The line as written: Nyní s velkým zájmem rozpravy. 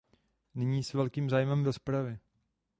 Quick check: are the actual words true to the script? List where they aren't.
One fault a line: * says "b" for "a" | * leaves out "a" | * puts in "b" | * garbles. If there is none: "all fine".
all fine